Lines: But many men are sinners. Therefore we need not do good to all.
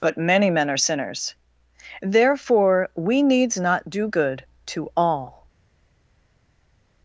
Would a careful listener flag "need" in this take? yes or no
yes